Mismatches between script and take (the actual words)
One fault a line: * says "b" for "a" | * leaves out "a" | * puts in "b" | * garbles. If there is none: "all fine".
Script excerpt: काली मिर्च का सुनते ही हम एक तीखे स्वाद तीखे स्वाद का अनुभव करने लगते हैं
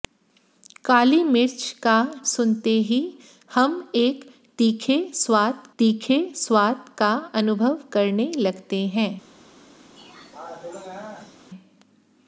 all fine